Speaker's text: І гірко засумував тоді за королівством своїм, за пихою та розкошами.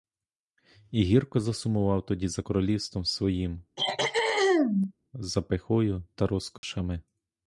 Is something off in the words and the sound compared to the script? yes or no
yes